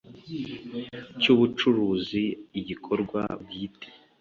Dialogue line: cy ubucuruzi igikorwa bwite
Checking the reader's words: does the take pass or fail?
pass